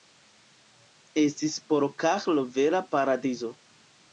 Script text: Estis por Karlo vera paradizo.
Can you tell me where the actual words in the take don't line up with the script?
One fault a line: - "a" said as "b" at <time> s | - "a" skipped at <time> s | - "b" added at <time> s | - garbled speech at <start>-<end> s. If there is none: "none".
none